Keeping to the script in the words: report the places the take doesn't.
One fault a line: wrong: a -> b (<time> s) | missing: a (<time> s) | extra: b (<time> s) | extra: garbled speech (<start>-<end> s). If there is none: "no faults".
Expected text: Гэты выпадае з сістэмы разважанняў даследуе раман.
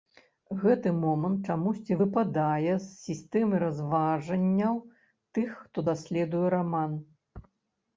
extra: момант чамусьці (1.0 s)
extra: тых хто (5.3 s)